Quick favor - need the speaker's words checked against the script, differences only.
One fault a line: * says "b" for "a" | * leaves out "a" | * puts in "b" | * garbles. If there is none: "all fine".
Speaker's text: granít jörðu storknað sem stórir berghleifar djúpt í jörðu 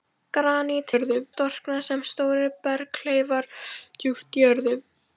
all fine